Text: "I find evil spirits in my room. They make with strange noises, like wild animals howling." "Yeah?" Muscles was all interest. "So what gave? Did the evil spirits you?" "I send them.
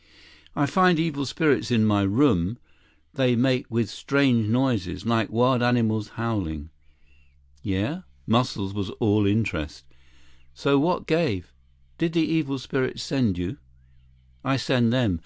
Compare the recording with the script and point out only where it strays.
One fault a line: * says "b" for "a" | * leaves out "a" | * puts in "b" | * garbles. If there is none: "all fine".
* puts in "send"